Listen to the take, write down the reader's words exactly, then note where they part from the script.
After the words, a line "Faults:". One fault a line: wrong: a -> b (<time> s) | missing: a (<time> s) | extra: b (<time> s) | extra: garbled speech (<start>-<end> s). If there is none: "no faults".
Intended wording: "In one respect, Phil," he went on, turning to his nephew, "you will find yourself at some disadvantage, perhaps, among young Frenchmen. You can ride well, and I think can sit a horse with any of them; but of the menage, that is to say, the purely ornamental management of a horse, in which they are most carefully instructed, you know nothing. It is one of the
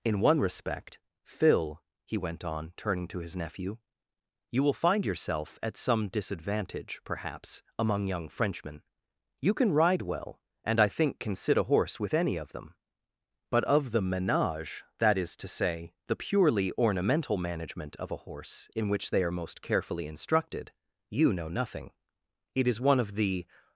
"In one respect, Phil," he went on, turning to his nephew, "you will find yourself at some disadvantage, perhaps, among young Frenchmen. You can ride well, and I think can sit a horse with any of them; but of the menage, that is to say, the purely ornamental management of a horse, in which they are most carefully instructed, you know nothing. It is one of the
Faults:
no faults